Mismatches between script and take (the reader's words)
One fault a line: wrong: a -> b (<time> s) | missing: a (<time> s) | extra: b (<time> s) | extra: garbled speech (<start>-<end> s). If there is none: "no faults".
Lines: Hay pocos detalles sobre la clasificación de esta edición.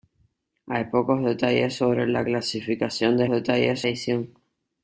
wrong: esta -> detalles (3.3 s)